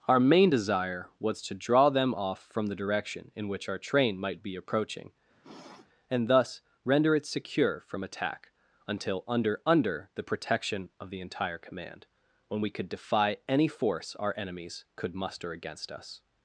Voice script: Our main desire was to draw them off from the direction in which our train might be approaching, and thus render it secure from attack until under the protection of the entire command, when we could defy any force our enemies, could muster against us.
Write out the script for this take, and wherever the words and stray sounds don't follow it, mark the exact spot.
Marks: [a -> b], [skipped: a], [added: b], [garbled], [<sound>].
Our main desire was to draw them off from the direction in which our train might be approaching, [sniff] and thus render it secure from attack until under [added: under] the protection of the entire command, when we could defy any force our enemies, could muster against us.